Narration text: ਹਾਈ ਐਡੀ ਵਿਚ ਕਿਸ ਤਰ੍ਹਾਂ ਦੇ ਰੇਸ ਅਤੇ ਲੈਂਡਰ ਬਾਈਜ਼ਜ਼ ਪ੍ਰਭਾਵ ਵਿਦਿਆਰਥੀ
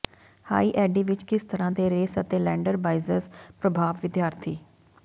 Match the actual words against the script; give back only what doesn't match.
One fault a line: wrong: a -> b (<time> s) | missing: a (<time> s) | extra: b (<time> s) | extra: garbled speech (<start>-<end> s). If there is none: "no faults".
no faults